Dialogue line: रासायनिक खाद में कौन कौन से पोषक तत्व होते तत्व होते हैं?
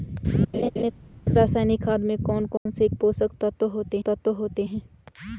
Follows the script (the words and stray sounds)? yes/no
no